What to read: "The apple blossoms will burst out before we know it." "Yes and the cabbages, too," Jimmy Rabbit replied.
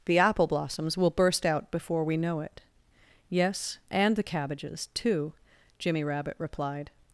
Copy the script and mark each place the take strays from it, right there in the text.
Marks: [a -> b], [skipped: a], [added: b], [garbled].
"The apple blossoms will burst out before we know it." "Yes and the cabbages, too," Jimmy Rabbit replied.